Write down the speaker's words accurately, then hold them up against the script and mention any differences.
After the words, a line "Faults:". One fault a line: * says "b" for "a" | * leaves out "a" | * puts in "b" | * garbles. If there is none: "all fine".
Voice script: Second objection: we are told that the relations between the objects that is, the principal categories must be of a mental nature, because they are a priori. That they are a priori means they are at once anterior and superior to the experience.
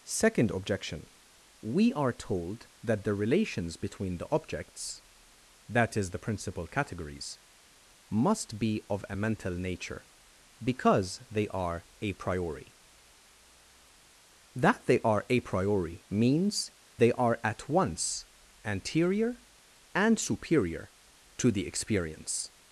Second objection: we are told that the relations between the objects that is, the principal categories must be of a mental nature, because they are a priori. That they are a priori means they are at once anterior and superior to the experience.
Faults:
all fine